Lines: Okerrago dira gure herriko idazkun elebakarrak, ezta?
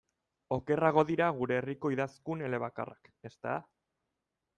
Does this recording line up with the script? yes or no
yes